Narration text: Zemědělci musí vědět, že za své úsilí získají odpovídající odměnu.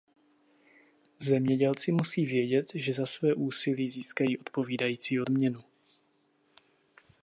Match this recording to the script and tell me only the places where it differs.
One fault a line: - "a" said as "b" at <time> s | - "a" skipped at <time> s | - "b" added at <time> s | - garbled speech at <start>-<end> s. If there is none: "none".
none